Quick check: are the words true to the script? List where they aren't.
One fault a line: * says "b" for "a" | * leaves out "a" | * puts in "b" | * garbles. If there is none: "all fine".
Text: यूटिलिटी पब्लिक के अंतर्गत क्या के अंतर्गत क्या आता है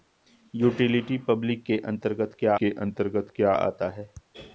all fine